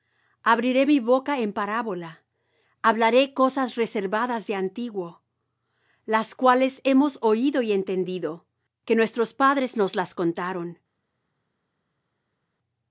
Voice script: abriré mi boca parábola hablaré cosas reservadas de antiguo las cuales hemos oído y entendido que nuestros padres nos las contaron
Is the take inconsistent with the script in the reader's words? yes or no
yes